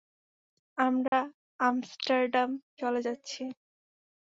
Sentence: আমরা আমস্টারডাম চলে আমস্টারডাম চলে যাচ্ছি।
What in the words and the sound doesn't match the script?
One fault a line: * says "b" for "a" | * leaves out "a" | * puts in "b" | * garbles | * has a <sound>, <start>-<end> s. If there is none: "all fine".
* has a dropout, 1.1-1.1 s
* leaves out "আমস্টারডাম চলে"